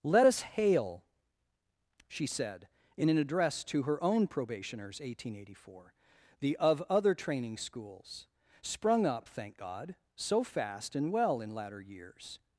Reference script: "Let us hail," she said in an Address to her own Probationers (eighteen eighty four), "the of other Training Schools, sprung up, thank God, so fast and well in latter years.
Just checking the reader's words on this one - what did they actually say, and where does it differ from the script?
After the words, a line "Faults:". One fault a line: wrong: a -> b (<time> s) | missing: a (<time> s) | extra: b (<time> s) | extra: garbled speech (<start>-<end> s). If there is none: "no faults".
"Let us hail," she said in an Address to her own Probationers (eighteen eighty four), "the of other Training Schools, sprung up, thank God, so fast and well in latter years.
Faults:
no faults